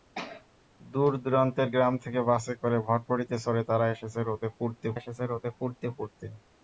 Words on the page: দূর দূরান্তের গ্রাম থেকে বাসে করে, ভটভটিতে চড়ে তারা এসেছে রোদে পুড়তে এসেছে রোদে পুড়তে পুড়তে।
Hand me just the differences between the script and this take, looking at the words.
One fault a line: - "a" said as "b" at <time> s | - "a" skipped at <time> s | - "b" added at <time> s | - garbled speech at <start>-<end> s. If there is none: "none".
none